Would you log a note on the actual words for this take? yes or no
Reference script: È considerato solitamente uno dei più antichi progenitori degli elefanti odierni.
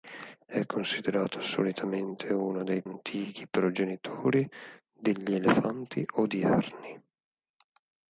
yes